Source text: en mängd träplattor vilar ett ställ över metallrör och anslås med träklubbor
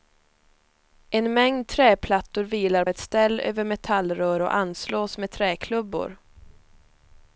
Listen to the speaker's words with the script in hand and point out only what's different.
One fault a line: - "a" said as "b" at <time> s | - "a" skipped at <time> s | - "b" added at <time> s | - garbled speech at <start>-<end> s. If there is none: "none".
none